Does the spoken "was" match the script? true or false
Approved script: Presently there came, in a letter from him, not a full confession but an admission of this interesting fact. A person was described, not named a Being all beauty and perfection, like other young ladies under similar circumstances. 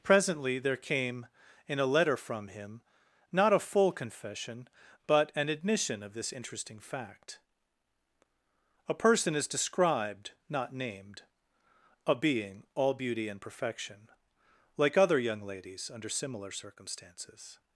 false